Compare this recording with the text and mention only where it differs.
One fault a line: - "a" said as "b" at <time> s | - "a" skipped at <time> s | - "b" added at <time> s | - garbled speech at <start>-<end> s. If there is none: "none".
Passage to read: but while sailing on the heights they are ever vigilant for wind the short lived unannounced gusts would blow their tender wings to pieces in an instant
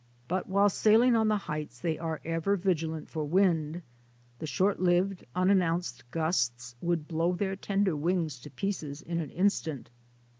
none